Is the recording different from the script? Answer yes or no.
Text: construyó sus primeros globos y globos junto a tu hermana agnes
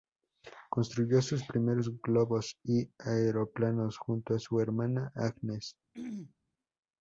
yes